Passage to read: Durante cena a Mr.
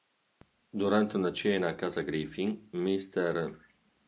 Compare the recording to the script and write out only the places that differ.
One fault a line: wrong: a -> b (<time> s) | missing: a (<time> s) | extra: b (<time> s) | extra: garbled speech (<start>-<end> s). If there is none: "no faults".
extra: una (1.1 s)
extra: casa Griffin (1.8 s)